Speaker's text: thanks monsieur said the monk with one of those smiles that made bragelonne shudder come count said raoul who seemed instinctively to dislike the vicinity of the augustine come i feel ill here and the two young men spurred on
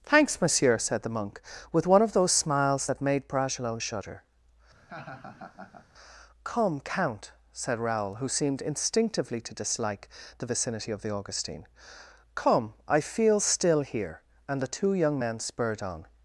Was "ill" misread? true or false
true